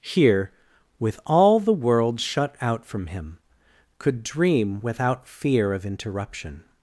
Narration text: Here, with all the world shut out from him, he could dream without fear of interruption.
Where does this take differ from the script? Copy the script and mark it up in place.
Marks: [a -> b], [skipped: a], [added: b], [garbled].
Here, with all the world shut out from him, [skipped: he] could dream without fear of interruption.